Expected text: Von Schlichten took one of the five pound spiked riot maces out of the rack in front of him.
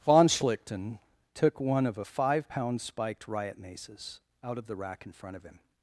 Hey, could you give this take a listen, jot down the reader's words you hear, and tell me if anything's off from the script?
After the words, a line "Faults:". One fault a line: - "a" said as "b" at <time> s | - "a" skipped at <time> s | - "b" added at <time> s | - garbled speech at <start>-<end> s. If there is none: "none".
Von Schlichten took one of a five pound spiked riot maces out of the rack in front of him.
Faults:
- "the" said as "a" at 1.9 s